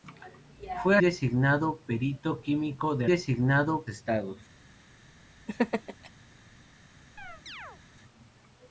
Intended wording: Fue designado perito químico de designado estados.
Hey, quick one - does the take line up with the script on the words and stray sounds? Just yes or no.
no